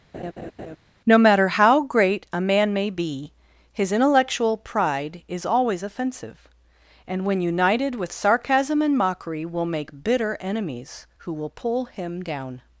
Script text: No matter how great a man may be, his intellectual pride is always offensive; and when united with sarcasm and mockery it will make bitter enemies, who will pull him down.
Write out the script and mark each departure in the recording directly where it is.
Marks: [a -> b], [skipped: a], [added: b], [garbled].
No matter how great a man may be, his intellectual pride is always offensive; and when united with sarcasm and mockery [skipped: it] will make bitter enemies, who will pull him down.